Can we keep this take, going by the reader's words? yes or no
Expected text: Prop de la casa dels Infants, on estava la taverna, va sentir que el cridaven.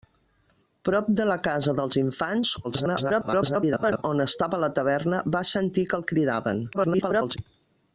no